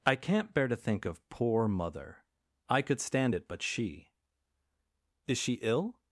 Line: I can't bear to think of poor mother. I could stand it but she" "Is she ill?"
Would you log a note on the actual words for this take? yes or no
no